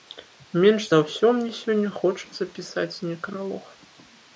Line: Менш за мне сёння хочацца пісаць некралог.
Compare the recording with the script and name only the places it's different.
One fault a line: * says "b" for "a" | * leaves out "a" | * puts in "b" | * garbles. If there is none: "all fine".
* puts in "ўсё"